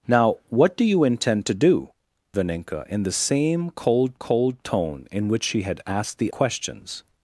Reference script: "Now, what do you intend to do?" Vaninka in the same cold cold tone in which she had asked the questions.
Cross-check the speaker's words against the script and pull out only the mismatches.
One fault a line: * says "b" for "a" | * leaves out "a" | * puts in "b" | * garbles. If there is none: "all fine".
all fine